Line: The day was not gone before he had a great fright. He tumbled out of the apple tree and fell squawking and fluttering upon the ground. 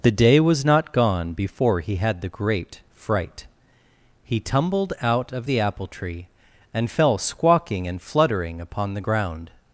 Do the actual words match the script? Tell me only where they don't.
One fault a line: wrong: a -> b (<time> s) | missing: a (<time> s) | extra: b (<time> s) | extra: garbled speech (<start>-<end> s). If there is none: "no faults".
wrong: a -> the (2.2 s)